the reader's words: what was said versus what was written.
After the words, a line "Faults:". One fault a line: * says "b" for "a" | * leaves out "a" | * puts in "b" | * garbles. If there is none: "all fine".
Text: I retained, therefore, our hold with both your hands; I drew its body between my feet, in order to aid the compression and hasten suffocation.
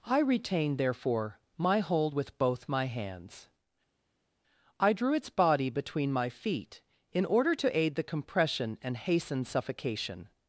I retained, therefore, my hold with both my hands; I drew its body between my feet, in order to aid the compression and hasten suffocation.
Faults:
* says "my" for "our"
* says "my" for "your"